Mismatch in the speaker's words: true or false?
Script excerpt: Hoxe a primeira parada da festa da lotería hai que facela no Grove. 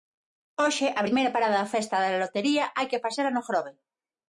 false